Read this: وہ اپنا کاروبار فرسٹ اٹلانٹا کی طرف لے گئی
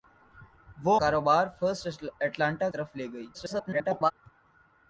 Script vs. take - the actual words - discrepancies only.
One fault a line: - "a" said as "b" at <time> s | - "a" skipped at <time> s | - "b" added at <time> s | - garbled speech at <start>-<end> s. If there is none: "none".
- "اپنا" skipped at 0.9 s
- "کی" skipped at 2.7 s
- garbled speech at 3.3-4.1 s